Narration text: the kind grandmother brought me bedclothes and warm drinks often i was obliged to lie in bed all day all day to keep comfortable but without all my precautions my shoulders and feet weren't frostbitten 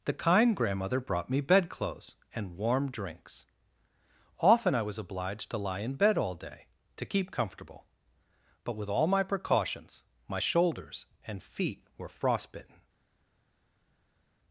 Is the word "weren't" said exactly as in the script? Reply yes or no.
no